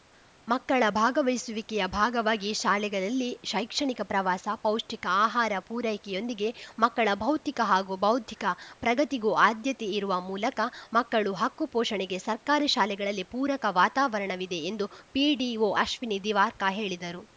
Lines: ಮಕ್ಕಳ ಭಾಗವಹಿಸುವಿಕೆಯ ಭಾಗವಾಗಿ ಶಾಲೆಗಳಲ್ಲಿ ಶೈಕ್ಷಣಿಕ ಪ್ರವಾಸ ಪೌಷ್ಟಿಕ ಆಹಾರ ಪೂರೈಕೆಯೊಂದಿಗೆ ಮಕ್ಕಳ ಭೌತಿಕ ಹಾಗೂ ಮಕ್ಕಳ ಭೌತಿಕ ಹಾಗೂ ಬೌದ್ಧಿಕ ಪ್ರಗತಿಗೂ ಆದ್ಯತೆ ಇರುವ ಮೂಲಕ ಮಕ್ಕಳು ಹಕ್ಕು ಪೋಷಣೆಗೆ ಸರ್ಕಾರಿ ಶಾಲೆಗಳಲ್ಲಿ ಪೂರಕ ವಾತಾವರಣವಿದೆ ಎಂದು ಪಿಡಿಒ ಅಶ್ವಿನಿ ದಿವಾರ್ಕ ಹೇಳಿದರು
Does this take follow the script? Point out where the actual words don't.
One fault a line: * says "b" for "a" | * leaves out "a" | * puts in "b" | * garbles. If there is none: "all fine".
* leaves out "ಮಕ್ಕಳ ಭೌತಿಕ ಹಾಗೂ"